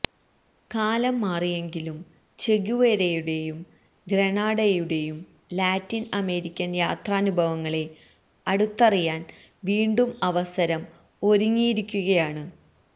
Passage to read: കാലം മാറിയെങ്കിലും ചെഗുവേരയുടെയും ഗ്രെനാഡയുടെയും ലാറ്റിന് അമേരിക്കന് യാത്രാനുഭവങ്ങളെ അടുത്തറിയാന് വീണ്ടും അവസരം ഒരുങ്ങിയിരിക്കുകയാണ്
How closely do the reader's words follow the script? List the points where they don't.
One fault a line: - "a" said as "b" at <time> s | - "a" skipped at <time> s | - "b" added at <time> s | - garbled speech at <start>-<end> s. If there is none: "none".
none